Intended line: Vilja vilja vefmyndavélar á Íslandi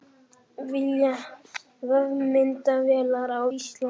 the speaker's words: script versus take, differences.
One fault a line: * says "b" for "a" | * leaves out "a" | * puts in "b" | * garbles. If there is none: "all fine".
* leaves out "vilja"